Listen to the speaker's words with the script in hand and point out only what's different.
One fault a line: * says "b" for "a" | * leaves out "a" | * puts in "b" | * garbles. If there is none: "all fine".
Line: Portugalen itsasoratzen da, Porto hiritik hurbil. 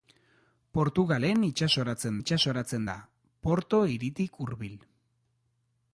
* puts in "itsasoratzen"